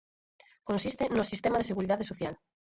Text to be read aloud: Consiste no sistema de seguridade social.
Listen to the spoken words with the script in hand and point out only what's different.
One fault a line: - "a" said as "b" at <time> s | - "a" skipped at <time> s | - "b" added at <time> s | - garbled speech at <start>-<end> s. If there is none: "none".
none